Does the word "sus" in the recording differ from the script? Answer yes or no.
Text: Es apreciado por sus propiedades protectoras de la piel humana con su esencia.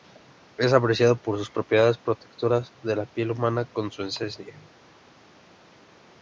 no